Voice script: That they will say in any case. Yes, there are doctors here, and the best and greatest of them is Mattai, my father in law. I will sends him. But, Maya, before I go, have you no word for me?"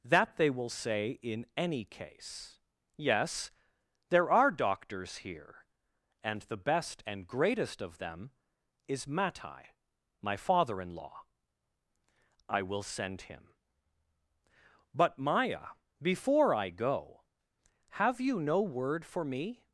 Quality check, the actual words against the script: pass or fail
fail